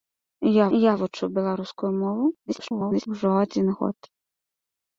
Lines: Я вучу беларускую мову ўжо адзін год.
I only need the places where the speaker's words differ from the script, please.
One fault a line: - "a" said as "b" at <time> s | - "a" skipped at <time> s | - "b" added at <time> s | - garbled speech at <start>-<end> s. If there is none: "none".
- "я" added at 0.8 s
- garbled speech at 2.5-3.1 s